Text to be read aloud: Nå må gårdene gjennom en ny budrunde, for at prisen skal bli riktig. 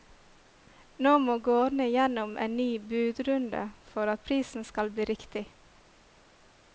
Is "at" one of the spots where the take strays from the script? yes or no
no